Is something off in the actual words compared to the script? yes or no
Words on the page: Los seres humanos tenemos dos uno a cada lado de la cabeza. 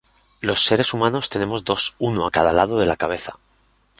no